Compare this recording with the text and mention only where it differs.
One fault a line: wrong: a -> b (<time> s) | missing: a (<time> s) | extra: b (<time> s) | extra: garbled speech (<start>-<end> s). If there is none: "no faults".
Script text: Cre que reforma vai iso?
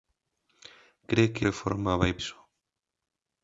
no faults